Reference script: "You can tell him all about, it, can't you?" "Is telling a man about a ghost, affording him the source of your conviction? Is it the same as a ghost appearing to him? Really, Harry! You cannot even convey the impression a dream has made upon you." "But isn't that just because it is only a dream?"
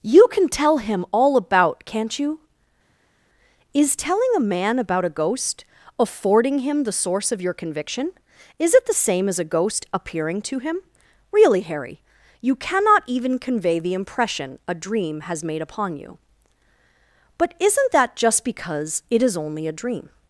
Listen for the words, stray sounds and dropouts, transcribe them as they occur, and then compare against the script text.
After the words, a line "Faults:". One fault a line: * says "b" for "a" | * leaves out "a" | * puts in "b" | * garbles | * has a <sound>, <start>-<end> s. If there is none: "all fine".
"You can tell him all about, can't you?" "Is telling a man about a ghost, affording him the source of your conviction? Is it the same as a ghost appearing to him? Really, Harry! You cannot even convey the impression a dream has made upon you." "But isn't that just because it is only a dream?"
Faults:
* leaves out "it"